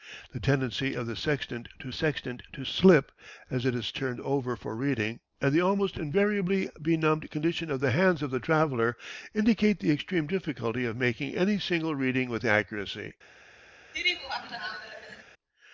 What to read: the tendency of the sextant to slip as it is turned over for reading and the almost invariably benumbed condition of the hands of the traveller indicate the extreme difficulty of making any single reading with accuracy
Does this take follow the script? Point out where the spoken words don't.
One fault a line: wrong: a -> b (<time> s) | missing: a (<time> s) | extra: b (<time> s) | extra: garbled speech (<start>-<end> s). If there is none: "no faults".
extra: sextant to (1.9 s)